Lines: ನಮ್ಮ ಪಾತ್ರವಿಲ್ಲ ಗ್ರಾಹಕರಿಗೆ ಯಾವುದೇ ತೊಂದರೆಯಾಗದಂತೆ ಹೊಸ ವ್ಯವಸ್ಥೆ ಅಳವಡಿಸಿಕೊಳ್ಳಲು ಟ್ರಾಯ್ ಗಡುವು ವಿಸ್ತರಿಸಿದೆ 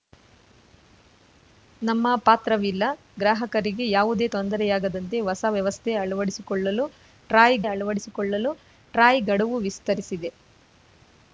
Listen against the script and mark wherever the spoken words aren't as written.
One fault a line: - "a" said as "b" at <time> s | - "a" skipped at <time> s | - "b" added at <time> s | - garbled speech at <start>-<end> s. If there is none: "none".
- "ಅಳವಡಿಸಿಕೊಳ್ಳಲು ಟ್ರಾಯ್" added at 7.7 s